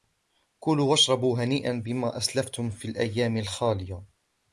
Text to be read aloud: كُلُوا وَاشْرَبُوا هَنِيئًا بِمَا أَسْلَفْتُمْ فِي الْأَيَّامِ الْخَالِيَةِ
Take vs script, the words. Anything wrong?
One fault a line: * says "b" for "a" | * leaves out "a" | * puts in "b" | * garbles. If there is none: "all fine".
all fine